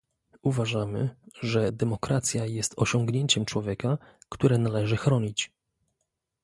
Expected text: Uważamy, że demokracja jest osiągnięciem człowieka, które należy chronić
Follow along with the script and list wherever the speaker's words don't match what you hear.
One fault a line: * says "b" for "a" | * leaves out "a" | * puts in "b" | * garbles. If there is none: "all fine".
all fine